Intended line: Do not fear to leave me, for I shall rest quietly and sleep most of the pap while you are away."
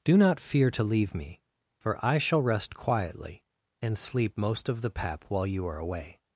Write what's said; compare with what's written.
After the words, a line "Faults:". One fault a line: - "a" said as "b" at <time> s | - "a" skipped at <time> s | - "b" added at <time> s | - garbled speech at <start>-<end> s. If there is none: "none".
Do not fear to leave me, for I shall rest quietly and sleep most of the pap while you are away."
Faults:
none